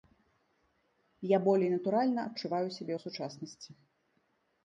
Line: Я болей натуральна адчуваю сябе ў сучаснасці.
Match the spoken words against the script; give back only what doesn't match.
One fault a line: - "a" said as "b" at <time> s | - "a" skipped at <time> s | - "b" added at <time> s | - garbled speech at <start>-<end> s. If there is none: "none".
none